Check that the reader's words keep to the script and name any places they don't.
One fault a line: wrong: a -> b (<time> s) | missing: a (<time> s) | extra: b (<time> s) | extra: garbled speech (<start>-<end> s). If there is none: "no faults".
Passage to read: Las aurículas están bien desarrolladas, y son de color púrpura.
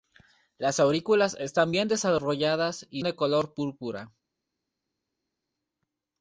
missing: son (3.0 s)